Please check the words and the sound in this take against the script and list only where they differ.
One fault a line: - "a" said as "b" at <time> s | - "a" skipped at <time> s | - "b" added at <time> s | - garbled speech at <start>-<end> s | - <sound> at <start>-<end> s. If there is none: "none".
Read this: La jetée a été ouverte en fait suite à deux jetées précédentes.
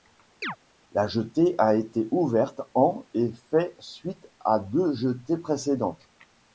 - chirp at 0.4-0.6 s
- "et" added at 3.1 s